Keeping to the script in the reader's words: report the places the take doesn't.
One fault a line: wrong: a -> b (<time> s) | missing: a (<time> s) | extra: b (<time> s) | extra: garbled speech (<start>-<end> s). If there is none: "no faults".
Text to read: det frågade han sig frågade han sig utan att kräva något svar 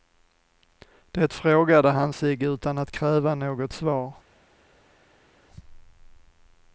missing: frågade han sig (2.4 s)